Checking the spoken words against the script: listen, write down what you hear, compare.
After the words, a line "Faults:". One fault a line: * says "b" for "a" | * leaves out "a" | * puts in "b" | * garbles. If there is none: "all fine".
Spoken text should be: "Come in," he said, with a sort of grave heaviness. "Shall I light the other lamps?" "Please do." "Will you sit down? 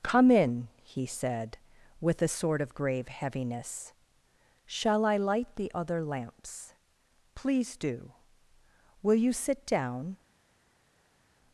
"Come in," he said, with a sort of grave heaviness. "Shall I light the other lamps?" "Please do." "Will you sit down?
Faults:
all fine